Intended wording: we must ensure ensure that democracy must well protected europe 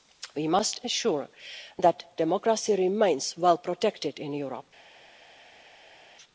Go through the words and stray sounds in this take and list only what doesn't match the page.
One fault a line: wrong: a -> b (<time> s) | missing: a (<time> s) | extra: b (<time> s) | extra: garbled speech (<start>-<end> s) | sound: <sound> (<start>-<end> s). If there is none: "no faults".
missing: ensure (1.3 s)
wrong: must -> remains (2.8 s)
extra: in (4.2 s)